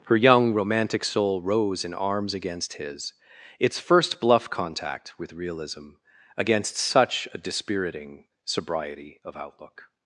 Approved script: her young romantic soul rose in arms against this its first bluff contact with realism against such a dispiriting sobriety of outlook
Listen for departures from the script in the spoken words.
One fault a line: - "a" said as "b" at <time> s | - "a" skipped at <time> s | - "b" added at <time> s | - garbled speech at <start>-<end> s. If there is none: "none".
- "this" said as "his" at 2.7 s